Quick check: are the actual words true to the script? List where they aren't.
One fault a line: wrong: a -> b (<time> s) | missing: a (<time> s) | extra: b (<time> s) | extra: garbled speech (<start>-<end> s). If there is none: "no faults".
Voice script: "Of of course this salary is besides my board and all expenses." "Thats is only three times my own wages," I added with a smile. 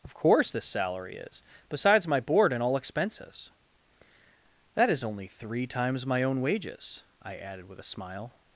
missing: of (0.1 s)
wrong: Thats -> That (4.8 s)